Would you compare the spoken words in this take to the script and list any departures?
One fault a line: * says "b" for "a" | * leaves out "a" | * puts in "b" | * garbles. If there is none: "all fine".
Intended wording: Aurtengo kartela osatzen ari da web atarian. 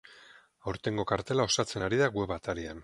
all fine